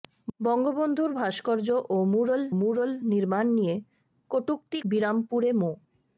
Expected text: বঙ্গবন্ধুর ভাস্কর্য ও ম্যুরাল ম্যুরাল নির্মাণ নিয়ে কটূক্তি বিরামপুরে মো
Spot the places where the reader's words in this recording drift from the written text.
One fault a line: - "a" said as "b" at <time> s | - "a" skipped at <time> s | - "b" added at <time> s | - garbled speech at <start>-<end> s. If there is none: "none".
none